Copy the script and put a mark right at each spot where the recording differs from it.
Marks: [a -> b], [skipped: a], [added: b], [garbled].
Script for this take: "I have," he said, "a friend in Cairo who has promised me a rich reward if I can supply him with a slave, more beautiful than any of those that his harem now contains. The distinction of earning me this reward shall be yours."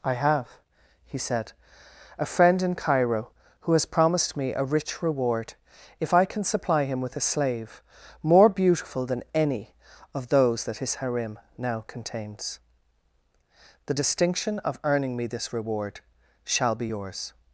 "I have," he said, "a friend in Cairo who has promised me a rich reward if I can supply him with a slave, more beautiful than any of those that his harem now contains. The distinction of earning me this reward shall be yours."